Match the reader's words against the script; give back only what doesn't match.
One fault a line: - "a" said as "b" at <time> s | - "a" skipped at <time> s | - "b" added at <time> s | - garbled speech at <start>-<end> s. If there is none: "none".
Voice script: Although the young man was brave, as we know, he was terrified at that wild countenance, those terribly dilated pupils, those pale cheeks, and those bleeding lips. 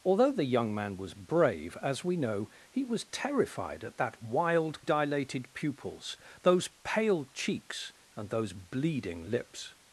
- "countenance those terribly" skipped at 4.8 s